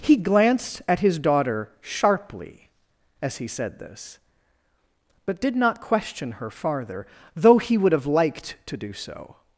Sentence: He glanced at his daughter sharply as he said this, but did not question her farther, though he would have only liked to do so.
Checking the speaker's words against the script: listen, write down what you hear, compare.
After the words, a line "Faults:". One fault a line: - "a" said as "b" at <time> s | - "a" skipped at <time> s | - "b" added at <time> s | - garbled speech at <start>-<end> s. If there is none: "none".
He glanced at his daughter sharply as he said this, but did not question her farther, though he would have liked to do so.
Faults:
- "only" skipped at 8.1 s